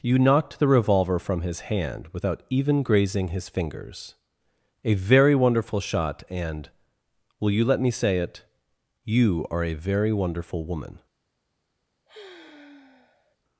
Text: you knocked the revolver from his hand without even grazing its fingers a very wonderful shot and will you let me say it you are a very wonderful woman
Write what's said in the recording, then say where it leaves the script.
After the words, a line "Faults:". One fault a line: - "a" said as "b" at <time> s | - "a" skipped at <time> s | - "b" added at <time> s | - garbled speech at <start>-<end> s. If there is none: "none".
you knocked the revolver from his hand without even grazing his fingers a very wonderful shot and will you let me say it you are a very wonderful woman
Faults:
- "its" said as "his" at 3.3 s